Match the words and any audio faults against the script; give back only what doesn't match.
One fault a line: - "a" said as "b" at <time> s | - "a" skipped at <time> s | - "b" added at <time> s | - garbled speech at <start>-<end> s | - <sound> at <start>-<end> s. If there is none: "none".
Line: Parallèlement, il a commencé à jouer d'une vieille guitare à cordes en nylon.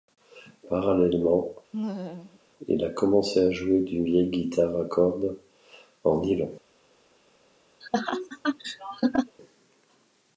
- laugh at 1.7-2.4 s
- laugh at 7.8-9.4 s